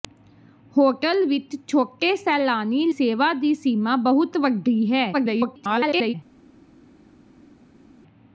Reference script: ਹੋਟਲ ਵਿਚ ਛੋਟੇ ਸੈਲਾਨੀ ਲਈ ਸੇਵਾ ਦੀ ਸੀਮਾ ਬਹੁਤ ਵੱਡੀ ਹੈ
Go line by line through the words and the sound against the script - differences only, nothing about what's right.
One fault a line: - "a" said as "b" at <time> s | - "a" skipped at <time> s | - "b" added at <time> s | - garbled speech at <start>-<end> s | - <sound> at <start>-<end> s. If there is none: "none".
- "ਲਈ" skipped at 2.9 s
- garbled speech at 5.1-6.1 s